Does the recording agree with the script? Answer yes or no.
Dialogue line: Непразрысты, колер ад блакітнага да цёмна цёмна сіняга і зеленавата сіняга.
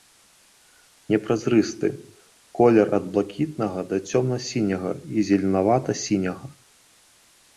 no